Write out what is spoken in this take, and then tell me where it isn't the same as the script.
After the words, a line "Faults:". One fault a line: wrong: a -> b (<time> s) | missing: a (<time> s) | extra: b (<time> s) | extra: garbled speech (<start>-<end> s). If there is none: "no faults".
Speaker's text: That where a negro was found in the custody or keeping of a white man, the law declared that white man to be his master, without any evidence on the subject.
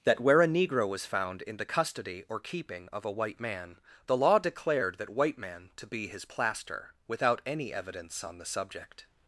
That where a negro was found in the custody or keeping of a white man, the law declared that white man to be his plaster, without any evidence on the subject.
Faults:
wrong: master -> plaster (6.2 s)